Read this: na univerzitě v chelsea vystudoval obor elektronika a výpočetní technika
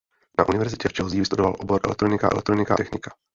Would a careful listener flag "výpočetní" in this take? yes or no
yes